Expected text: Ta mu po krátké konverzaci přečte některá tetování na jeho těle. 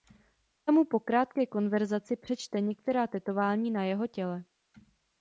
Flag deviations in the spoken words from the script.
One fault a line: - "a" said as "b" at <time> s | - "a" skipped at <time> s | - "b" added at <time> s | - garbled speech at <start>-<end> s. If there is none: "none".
none